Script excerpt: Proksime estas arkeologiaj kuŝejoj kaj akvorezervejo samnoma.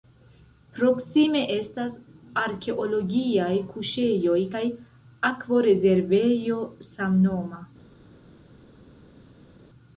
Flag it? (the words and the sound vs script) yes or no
no